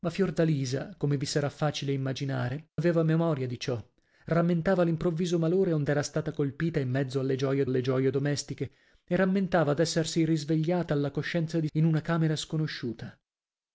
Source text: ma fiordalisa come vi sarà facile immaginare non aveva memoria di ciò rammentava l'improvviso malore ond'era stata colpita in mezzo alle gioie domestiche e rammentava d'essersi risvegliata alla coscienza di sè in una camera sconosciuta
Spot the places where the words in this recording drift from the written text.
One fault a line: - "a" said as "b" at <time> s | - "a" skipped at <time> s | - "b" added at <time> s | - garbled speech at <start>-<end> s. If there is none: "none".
- "non" skipped at 2.7 s
- "alle gioie" added at 7.6 s
- "sè" skipped at 11.7 s